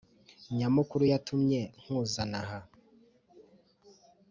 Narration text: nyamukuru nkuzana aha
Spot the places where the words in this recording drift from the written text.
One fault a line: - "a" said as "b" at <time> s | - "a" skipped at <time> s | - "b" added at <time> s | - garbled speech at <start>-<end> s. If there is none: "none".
- "yatumye" added at 1.1 s